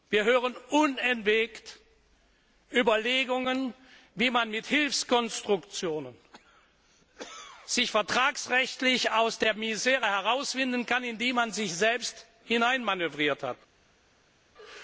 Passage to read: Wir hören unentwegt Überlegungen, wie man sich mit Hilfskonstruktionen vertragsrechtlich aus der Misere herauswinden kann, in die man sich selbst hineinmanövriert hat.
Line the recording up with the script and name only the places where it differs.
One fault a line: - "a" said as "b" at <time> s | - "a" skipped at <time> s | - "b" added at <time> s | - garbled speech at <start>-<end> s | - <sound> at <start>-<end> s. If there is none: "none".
none